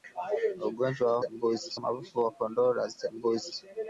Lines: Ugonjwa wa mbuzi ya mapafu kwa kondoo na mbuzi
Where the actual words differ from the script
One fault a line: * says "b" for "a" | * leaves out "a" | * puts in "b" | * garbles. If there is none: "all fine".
all fine